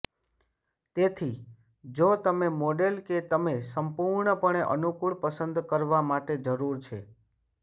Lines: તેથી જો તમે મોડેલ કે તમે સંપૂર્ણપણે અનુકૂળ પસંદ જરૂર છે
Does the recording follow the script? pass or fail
fail